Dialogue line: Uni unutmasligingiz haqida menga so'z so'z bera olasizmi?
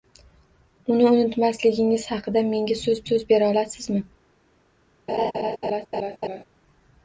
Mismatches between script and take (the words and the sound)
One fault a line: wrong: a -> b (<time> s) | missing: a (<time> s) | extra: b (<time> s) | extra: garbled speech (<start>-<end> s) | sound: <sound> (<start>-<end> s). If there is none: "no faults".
sound: laugh (5.1-6.4 s)